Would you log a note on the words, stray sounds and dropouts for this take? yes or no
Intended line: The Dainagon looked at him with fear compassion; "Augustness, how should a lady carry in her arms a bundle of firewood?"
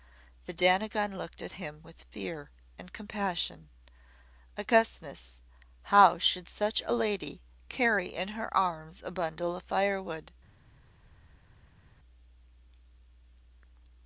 yes